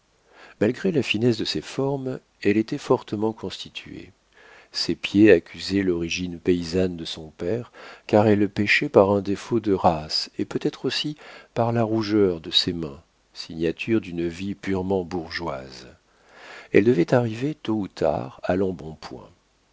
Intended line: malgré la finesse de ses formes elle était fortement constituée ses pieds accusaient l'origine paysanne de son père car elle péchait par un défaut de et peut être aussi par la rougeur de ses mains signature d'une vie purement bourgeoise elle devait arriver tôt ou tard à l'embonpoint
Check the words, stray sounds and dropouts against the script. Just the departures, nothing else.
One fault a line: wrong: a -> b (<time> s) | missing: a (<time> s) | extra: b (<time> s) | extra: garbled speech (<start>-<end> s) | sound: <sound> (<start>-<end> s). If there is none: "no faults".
extra: race (9.7 s)